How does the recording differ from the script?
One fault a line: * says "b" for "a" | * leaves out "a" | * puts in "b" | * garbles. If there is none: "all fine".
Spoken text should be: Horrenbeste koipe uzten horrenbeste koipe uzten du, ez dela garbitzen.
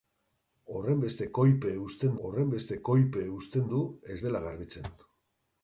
all fine